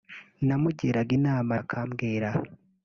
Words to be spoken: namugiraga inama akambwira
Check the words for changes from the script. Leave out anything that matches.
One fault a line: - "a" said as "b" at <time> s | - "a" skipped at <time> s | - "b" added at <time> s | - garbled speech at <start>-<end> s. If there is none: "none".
none